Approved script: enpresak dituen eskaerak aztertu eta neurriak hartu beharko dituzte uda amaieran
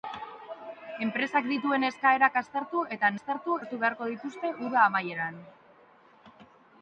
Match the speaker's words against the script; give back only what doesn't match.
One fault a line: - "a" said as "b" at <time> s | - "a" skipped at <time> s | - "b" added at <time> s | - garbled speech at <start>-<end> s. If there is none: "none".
- "neurriak" said as "aztertu" at 3.1 s